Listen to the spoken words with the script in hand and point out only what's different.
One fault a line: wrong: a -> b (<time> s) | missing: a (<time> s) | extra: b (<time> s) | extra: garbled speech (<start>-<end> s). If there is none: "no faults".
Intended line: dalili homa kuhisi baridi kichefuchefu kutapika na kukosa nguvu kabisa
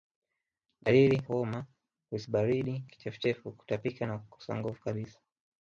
no faults